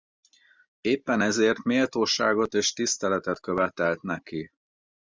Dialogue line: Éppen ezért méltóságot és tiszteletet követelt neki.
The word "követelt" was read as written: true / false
true